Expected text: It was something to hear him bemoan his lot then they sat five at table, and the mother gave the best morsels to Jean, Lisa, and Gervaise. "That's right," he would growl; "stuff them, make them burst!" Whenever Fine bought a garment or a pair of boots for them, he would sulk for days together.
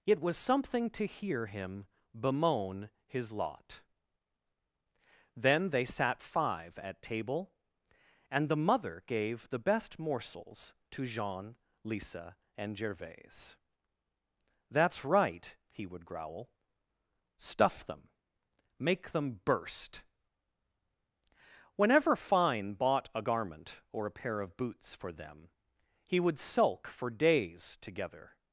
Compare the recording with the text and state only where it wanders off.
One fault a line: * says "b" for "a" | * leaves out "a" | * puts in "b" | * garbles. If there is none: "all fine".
all fine